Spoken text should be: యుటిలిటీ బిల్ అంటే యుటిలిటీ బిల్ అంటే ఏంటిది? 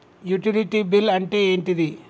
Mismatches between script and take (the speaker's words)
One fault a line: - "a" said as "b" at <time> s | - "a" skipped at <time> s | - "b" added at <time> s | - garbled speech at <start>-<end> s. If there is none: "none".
- "యుటిలిటీ బిల్ అంటే" skipped at 1.4 s